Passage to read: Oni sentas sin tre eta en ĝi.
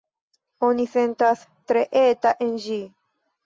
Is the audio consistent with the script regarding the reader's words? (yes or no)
no